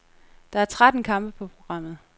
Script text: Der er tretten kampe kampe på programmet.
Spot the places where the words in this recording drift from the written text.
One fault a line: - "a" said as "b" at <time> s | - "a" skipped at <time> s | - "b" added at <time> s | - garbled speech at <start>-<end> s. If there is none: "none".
- "kampe" skipped at 1.3 s